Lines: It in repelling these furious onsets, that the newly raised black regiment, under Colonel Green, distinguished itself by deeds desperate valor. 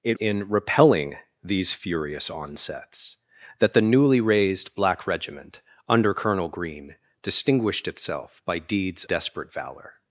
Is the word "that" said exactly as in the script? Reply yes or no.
yes